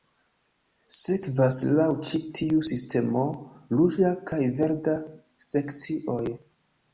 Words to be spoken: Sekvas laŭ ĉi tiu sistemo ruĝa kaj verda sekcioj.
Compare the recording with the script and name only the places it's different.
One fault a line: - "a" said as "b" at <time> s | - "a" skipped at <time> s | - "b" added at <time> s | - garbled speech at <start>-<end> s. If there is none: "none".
none